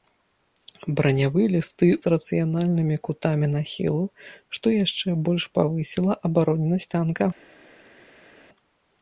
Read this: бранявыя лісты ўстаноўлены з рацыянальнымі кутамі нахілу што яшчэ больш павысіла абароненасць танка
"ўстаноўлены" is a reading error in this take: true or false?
true